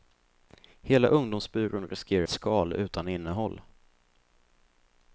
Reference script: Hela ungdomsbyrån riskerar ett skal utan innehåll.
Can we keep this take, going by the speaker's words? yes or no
yes